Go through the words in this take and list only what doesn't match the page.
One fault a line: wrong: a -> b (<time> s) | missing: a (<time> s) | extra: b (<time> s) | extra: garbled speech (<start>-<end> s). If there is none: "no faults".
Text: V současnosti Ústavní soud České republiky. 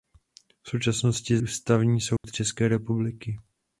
no faults